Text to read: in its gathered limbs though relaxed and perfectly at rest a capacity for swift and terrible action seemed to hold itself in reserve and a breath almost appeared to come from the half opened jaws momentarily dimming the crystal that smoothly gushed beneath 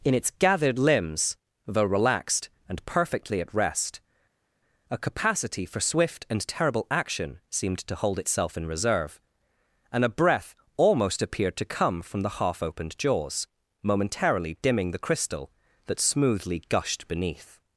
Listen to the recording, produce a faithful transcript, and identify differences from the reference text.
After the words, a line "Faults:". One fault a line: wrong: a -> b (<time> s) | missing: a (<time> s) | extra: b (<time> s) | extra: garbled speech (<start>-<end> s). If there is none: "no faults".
in its gathered limbs though relaxed and perfectly at rest a capacity for swift and terrible action seemed to hold itself in reserve and a breath almost appeared to come from the half opened jaws momentarily dimming the crystal that smoothly gushed beneath
Faults:
no faults